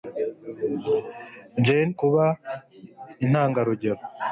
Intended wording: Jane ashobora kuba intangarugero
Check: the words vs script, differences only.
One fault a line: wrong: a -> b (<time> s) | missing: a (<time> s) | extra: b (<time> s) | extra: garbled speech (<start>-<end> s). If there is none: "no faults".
missing: ashobora (1.9 s)